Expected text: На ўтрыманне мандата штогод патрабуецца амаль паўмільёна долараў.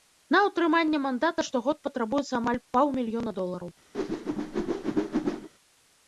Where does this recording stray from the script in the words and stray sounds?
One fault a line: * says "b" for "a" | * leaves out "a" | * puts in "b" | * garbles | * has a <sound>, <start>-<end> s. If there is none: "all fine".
* has a whoosh, 3.9-5.5 s